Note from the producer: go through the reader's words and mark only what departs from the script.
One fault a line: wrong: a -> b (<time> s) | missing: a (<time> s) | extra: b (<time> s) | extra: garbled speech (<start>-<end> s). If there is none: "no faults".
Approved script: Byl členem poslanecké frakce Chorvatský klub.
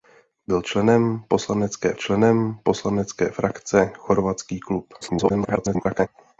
extra: členem poslanecké (1.9 s)
extra: garbled speech (5.0-6.1 s)